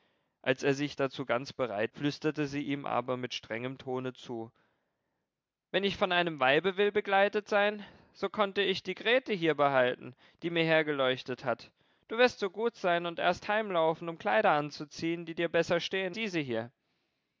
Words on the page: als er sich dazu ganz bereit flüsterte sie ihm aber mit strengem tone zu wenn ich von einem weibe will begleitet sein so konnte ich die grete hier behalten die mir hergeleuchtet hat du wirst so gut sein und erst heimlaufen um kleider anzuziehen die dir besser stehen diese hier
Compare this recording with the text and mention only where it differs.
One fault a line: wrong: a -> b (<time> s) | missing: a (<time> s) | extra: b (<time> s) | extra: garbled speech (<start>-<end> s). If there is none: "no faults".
no faults